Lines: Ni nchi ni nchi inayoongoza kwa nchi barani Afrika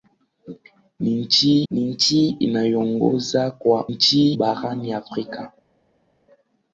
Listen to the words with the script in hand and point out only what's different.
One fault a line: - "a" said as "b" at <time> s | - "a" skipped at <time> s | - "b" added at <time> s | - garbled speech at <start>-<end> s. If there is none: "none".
none